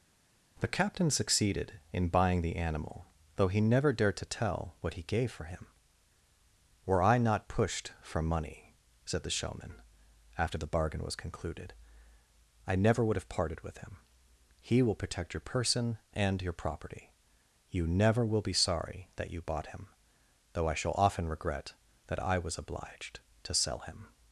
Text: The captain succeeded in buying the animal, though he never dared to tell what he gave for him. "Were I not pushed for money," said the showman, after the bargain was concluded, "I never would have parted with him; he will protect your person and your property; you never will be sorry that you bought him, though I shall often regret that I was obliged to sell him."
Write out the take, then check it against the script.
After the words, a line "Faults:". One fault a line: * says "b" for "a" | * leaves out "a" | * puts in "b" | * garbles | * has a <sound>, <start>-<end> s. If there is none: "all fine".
The captain succeeded in buying the animal, though he never dared to tell what he gave for him. "Were I not pushed for money," said the showman, after the bargain was concluded, "I never would have parted with him; he will protect your person and your property; you never will be sorry that you bought him, though I shall often regret that I was obliged to sell him."
Faults:
all fine